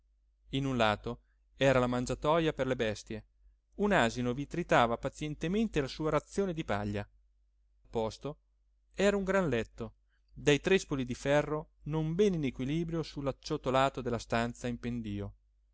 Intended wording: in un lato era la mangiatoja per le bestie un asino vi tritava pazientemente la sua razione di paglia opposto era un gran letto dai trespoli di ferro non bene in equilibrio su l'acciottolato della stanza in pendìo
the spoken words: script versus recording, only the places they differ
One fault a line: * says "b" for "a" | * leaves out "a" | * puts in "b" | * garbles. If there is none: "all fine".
all fine